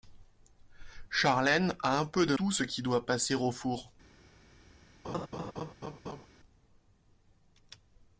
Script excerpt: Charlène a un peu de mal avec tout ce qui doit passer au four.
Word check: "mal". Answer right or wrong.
wrong